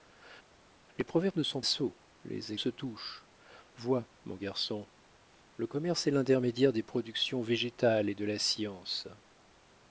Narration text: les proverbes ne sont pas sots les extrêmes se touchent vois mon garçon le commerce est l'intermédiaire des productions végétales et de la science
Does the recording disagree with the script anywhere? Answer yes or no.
yes